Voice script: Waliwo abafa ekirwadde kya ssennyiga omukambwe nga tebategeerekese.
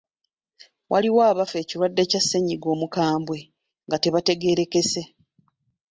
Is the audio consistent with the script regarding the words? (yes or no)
yes